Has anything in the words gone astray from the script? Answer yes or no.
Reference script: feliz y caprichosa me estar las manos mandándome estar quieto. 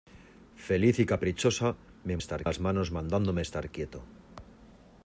no